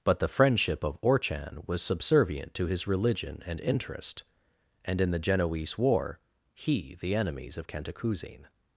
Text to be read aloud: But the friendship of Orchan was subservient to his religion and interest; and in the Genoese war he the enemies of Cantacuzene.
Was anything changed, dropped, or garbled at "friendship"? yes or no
no